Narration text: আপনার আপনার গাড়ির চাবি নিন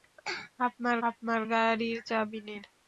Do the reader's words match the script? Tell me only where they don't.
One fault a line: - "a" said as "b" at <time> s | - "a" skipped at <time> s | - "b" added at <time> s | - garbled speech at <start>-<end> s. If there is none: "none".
none